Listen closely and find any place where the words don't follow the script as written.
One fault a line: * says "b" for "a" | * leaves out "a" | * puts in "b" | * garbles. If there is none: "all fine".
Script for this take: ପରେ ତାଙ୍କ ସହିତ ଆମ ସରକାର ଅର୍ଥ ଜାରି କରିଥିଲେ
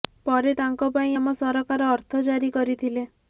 * says "ପାଇଁ" for "ସହିତ"